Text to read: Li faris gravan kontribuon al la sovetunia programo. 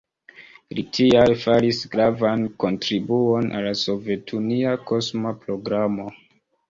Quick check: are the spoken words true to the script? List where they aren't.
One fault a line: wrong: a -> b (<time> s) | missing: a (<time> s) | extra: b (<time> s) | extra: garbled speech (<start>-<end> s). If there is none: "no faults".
extra: tial (1.0 s)
extra: kosma (4.9 s)